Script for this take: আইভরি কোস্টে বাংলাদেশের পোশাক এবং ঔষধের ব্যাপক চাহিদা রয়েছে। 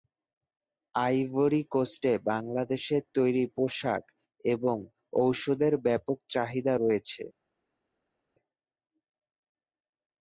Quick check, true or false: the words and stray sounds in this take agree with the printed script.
false